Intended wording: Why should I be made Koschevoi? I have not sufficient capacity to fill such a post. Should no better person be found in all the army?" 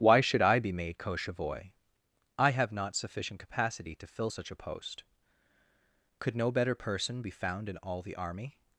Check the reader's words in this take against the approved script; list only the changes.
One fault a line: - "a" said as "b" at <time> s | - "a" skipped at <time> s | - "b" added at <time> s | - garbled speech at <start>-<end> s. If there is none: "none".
- "Should" said as "Could" at 6.2 s